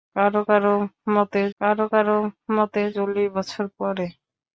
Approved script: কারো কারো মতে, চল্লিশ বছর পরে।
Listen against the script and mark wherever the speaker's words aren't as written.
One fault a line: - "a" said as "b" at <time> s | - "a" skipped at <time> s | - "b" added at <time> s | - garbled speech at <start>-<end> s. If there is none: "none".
- "কারো কারো মতে" added at 1.6 s